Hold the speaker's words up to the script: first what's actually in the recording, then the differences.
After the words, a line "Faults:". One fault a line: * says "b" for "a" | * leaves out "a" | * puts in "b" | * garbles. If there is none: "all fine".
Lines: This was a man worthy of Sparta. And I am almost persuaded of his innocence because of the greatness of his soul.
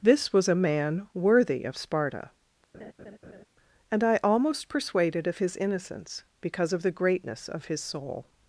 This was a man worthy of Sparta. And I almost persuaded of his innocence because of the greatness of his soul.
Faults:
* leaves out "am"